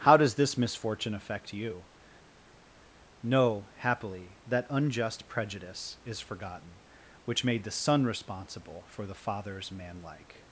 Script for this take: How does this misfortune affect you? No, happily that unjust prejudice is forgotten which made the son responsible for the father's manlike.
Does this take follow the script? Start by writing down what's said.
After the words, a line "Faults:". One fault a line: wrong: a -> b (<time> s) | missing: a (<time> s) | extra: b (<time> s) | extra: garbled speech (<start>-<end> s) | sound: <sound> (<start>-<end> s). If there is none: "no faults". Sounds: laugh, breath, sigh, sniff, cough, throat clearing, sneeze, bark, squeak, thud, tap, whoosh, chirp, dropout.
How does this misfortune affect you? No, happily that unjust prejudice is forgotten which made the son responsible for the father's manlike.
Faults:
no faults